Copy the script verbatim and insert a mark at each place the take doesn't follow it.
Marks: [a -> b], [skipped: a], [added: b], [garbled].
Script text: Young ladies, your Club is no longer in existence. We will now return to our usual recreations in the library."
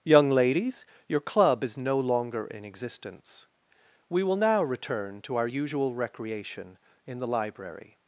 Young ladies, your Club is no longer in existence. We will now return to our usual [recreations -> recreation] in the library."